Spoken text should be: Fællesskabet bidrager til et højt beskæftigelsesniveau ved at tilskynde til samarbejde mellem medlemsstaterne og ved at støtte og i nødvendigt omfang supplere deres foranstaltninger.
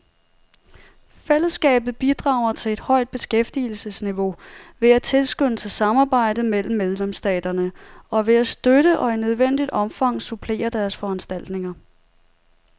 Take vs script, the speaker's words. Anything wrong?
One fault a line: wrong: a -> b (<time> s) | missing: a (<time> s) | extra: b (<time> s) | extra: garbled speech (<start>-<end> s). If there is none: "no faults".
no faults